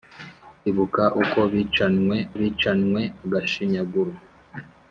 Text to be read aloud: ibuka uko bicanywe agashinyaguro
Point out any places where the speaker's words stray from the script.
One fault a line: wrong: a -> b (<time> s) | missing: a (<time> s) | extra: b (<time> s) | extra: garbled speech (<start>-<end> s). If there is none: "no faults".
extra: bicanywe (2.4 s)